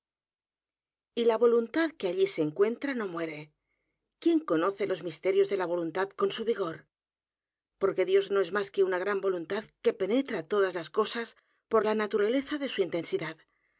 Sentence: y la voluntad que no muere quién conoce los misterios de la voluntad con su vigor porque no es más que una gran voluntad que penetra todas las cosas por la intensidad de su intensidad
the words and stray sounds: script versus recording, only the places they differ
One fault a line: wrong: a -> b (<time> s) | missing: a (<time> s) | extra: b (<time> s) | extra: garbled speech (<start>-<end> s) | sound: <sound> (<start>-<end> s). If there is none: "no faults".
extra: allí se encuentra (2.1 s)
extra: dios (8.1 s)
wrong: intensidad -> naturaleza (11.9 s)